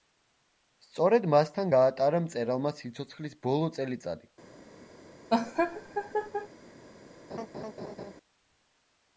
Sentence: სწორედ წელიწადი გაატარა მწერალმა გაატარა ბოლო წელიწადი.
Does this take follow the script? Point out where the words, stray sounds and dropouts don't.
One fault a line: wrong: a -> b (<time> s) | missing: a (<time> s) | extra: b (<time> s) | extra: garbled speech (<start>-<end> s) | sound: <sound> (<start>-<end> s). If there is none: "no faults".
wrong: წელიწადი -> მასთან (1.3 s)
wrong: გაატარა -> სიცოცხლის (2.8 s)
sound: laugh (5.3-6.5 s)
sound: laugh (7.3-8.1 s)